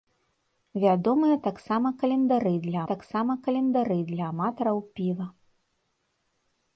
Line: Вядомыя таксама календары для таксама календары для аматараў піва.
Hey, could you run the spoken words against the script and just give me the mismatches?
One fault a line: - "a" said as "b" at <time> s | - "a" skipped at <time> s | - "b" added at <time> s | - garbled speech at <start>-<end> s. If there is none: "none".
none